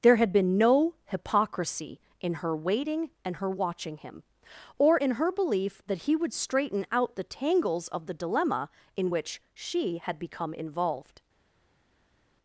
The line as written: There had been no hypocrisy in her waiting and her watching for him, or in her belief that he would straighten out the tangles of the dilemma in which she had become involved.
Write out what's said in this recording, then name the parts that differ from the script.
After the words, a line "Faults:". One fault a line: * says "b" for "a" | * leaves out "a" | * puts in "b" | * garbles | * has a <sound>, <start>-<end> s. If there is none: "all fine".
There had been no hypocrisy in her waiting and her watching him, or in her belief that he would straighten out the tangles of the dilemma in which she had become involved.
Faults:
* leaves out "for"